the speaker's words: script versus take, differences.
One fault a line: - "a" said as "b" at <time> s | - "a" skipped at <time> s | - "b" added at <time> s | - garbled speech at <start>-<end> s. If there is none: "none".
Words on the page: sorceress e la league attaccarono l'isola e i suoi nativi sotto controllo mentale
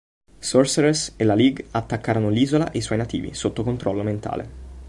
none